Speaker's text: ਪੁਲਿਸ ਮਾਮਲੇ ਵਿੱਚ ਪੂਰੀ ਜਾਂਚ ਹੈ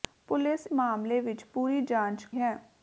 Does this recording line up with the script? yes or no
yes